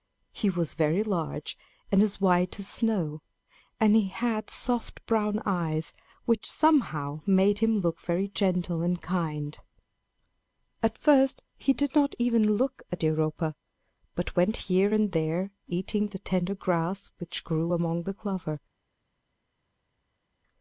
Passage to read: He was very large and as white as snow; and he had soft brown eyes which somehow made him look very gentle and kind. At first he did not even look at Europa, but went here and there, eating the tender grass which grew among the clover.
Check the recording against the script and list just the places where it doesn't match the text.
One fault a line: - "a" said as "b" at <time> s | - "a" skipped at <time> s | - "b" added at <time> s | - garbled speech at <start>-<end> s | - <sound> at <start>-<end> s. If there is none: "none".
none